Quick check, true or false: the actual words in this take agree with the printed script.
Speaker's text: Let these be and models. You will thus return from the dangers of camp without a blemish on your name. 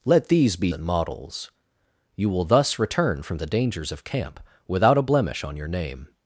true